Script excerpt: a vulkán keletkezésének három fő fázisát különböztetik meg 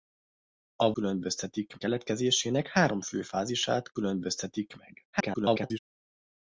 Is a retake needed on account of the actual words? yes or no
yes